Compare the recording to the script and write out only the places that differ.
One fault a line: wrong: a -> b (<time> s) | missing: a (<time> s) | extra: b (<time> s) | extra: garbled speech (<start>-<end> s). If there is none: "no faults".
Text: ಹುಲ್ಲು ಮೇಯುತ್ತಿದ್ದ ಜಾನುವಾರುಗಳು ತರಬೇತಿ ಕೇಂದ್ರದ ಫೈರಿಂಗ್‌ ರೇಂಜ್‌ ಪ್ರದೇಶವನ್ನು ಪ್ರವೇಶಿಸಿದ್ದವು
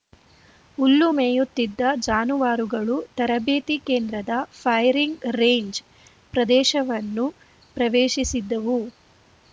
no faults